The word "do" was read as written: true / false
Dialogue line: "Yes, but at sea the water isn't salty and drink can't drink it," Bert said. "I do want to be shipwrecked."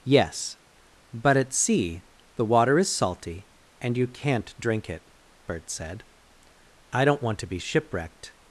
false